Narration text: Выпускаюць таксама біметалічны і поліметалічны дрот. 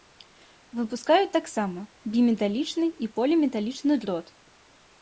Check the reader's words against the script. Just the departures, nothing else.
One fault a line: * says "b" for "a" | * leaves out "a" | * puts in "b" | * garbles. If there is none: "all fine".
all fine